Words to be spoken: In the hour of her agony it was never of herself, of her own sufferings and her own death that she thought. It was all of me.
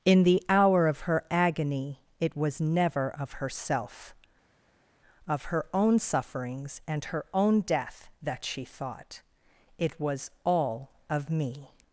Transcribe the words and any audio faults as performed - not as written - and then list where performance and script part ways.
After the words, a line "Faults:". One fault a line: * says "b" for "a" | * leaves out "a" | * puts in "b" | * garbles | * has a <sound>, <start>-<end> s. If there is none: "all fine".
In the hour of her agony it was never of herself, of her own sufferings and her own death that she thought. It was all of me.
Faults:
all fine